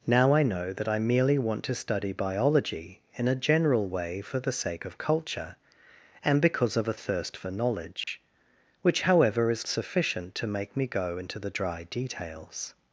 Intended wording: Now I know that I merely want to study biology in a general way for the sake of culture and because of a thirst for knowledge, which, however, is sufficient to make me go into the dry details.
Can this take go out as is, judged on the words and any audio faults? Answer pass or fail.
fail